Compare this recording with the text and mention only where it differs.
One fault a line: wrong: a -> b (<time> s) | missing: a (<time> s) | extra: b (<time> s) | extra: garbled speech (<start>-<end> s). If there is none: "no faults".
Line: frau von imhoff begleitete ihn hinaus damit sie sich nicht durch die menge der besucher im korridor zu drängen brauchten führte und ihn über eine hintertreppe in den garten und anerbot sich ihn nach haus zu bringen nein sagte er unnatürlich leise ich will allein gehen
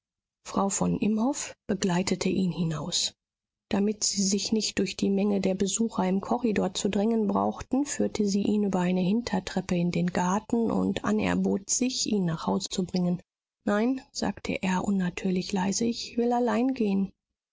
wrong: und -> sie (8.3 s)